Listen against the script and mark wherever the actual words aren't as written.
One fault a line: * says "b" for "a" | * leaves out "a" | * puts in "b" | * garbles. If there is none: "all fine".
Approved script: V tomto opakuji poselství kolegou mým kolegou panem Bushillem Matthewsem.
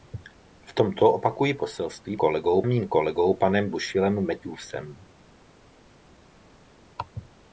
all fine